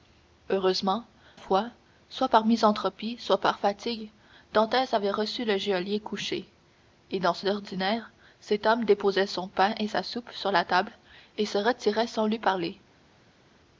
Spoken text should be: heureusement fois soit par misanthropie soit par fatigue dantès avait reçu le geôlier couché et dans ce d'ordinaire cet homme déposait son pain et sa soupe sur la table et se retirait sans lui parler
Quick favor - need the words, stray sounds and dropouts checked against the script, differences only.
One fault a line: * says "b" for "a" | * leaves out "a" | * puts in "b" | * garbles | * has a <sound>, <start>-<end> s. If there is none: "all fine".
all fine